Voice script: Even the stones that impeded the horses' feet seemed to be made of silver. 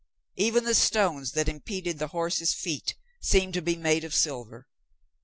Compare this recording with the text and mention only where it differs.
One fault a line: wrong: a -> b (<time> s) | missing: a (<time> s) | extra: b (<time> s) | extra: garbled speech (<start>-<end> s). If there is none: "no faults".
no faults